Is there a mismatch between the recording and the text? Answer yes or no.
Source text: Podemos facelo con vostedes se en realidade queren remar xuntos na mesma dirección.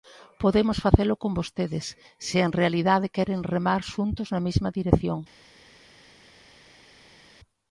no